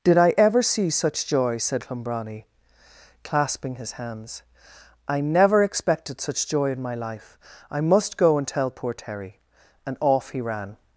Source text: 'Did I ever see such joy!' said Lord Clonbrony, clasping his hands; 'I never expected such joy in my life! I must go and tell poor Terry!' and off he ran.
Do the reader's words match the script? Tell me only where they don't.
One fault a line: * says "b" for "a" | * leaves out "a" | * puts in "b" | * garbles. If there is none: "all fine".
* leaves out "Lord"